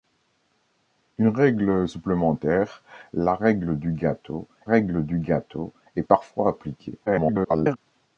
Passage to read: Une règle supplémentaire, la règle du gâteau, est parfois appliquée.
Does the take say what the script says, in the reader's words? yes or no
no